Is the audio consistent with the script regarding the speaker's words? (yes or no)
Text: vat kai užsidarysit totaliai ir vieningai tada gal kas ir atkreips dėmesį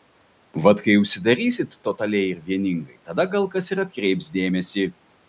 yes